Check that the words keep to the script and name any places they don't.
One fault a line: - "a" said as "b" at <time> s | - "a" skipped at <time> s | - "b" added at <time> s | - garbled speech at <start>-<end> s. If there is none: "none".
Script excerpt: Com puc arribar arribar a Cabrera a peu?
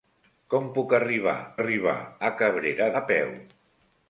none